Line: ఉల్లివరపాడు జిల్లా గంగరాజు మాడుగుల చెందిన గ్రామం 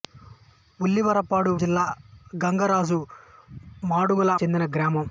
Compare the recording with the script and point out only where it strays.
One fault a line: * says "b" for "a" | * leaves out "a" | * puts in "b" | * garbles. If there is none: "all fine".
all fine